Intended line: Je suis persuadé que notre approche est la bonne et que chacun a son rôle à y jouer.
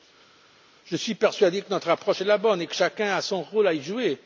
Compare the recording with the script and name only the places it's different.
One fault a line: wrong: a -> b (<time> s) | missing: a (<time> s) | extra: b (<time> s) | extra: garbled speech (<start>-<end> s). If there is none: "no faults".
no faults